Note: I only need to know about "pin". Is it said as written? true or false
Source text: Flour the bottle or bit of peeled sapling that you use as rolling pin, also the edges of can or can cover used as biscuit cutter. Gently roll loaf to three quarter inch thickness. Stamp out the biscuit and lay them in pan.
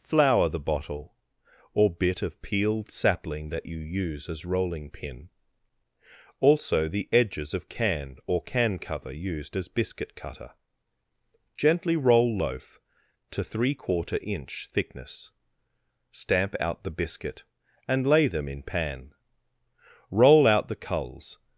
true